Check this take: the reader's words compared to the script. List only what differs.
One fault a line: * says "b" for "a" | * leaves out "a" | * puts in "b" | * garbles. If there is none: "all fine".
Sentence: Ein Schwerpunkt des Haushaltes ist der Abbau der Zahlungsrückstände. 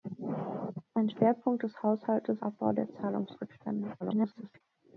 * leaves out "ist der"
* garbles